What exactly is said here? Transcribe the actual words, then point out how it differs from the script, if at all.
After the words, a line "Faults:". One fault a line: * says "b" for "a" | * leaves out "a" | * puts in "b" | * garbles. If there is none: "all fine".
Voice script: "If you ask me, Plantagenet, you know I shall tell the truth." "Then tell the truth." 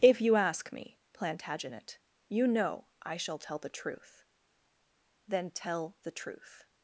"If you ask me, Plantagenet, you know I shall tell the truth." "Then tell the truth."
Faults:
all fine